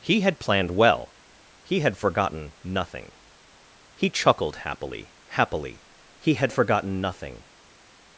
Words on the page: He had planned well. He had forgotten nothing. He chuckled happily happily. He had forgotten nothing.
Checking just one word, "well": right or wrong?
right